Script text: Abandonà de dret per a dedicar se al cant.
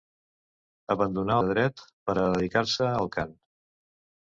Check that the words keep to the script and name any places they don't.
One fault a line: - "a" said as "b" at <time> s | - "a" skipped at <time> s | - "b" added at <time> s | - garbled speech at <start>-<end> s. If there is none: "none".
none